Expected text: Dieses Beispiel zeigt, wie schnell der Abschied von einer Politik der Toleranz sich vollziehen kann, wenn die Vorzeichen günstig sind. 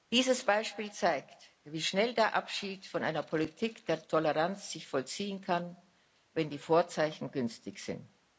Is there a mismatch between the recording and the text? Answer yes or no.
no